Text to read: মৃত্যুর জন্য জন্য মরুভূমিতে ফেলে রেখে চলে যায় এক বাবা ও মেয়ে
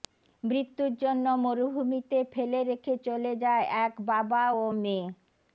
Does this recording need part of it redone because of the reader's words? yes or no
yes